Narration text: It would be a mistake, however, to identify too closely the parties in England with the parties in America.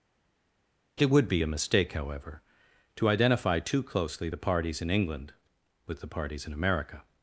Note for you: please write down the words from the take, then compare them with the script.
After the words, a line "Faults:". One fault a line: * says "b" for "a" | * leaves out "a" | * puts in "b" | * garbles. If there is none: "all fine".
It would be a mistake, however, to identify too closely the parties in England with the parties in America.
Faults:
all fine